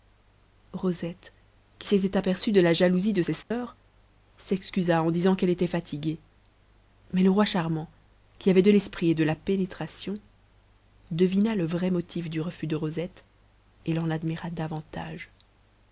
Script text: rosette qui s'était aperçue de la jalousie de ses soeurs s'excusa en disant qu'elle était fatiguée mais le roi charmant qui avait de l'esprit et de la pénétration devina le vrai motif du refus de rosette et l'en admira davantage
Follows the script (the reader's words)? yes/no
yes